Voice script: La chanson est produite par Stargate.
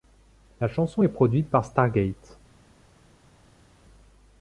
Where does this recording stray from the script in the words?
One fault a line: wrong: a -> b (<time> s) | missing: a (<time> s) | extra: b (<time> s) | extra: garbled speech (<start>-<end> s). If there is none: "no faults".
no faults